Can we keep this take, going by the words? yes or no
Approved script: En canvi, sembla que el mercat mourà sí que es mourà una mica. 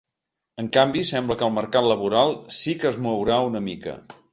no